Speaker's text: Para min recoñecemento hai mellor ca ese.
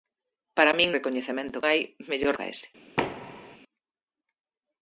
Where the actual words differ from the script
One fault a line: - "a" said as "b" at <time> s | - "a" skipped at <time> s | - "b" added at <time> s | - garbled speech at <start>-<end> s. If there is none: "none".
none